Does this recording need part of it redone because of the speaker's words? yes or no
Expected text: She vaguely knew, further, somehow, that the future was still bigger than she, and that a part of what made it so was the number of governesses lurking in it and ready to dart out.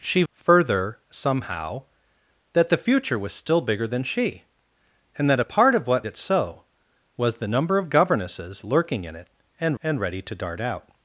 yes